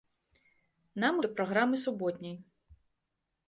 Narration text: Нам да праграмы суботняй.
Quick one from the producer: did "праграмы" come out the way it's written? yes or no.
yes